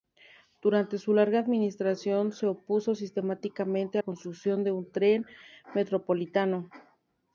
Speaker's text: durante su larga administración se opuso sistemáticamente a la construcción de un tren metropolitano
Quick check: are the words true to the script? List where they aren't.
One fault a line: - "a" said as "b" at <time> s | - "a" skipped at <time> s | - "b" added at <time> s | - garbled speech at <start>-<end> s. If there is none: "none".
- "la" skipped at 4.0 s